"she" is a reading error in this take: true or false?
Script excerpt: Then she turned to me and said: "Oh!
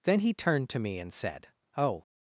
true